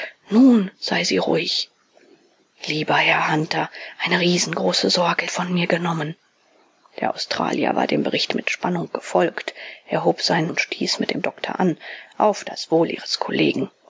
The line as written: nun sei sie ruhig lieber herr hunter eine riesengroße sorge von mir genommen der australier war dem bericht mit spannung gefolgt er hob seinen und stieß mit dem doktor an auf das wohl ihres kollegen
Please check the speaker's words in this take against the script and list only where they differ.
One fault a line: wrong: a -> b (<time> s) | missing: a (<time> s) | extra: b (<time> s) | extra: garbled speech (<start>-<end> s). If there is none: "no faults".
no faults